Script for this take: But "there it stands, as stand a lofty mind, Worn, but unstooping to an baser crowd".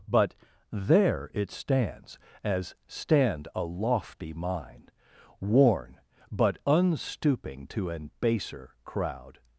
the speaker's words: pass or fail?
pass